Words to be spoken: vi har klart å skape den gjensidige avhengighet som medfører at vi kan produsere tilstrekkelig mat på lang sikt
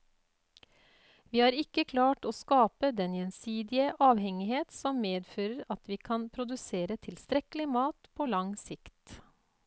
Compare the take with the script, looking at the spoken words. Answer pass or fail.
fail